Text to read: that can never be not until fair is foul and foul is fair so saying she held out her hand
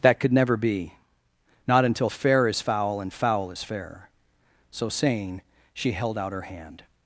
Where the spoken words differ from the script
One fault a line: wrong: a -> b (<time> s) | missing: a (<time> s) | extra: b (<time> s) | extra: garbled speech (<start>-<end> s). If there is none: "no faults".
wrong: can -> could (0.2 s)